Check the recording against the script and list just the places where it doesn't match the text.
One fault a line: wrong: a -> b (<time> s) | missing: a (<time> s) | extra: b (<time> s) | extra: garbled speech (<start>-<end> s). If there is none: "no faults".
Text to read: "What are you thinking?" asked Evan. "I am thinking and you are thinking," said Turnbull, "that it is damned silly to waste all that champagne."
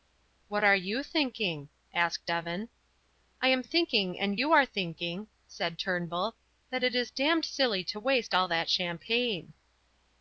no faults